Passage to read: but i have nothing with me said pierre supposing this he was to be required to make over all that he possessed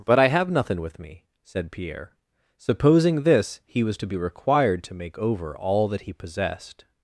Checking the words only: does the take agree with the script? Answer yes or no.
yes